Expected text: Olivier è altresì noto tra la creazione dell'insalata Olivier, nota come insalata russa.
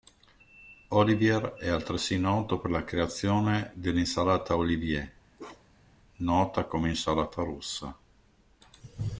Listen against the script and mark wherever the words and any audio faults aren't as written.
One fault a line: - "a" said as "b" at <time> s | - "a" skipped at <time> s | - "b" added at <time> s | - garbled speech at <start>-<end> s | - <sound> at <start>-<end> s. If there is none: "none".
- "tra" said as "per" at 2.6 s
- bark at 5.4-6.0 s